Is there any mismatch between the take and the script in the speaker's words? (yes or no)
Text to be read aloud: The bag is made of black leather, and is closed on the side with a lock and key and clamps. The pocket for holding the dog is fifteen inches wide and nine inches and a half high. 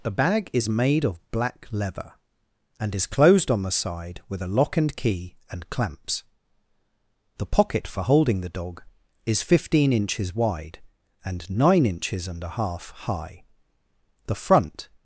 yes